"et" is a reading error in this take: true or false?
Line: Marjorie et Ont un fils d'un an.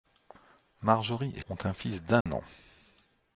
false